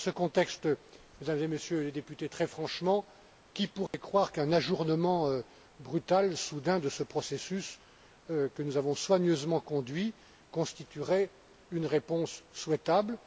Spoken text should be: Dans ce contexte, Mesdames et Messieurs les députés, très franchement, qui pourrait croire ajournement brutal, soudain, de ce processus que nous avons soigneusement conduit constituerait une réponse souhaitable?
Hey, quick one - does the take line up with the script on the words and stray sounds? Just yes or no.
no